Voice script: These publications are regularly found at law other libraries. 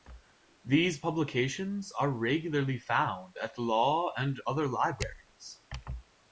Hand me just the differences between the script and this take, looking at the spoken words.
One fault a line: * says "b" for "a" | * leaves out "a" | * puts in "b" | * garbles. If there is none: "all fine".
* puts in "and"